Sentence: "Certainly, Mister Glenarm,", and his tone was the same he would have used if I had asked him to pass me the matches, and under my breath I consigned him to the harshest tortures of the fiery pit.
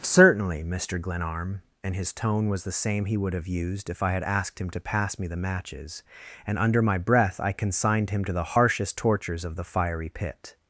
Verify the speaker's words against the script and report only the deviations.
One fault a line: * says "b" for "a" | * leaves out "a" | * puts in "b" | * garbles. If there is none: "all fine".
all fine